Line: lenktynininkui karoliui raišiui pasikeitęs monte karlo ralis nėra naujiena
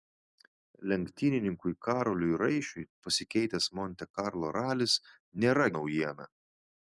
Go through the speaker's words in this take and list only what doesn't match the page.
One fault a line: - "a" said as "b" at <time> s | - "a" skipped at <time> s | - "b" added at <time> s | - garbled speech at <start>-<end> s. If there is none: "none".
none